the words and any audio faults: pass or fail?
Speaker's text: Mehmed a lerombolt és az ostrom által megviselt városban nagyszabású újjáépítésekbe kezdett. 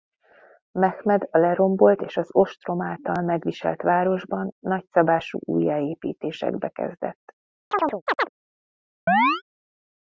fail